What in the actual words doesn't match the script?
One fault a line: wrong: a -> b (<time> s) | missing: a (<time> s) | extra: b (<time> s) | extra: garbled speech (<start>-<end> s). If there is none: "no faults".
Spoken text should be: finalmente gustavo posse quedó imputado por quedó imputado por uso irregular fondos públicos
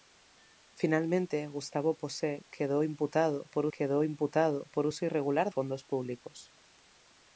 no faults